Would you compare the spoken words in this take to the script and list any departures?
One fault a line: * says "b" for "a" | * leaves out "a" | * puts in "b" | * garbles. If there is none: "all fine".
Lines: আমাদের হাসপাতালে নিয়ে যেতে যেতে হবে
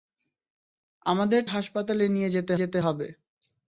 all fine